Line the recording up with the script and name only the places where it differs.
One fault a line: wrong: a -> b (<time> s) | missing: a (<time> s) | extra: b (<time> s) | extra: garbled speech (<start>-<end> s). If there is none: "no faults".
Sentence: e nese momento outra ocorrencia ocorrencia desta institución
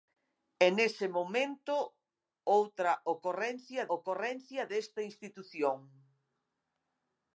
no faults